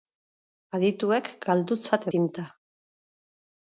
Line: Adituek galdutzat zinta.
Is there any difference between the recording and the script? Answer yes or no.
no